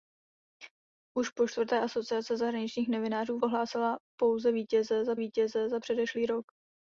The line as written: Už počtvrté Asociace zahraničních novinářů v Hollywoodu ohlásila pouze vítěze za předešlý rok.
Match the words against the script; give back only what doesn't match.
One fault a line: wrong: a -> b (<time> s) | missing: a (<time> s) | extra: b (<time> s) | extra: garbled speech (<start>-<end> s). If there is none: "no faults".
missing: Hollywoodu (3.4 s)
extra: vítěze za (5.2 s)